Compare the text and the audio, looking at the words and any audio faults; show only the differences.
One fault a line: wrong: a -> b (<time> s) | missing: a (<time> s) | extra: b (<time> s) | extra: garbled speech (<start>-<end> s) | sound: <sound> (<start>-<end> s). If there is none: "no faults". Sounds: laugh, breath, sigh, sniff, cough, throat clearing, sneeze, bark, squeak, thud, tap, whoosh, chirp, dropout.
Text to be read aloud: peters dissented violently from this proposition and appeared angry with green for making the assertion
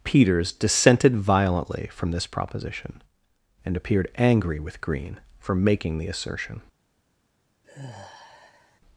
sound: sigh (7.6-8.8 s)